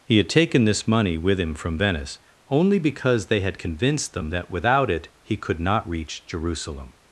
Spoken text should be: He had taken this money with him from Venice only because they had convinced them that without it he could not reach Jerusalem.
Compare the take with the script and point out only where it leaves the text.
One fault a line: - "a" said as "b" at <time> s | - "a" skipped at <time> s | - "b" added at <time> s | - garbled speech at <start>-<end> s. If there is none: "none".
none